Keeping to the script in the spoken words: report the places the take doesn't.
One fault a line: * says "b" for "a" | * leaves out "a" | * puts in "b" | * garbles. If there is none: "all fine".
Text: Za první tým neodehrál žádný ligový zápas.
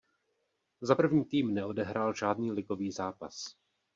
all fine